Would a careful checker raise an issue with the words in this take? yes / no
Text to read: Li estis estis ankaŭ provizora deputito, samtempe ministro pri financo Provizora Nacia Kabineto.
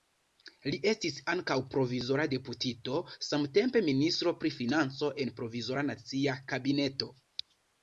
yes